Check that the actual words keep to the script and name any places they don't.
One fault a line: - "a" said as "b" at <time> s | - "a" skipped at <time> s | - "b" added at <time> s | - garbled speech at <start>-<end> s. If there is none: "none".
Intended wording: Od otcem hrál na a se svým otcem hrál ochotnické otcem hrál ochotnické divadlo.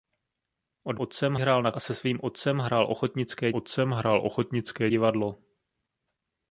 none